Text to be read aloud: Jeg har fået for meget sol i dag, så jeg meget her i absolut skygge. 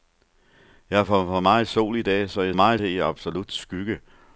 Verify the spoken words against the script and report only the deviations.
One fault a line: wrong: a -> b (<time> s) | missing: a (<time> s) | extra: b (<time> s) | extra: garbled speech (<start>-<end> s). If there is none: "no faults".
no faults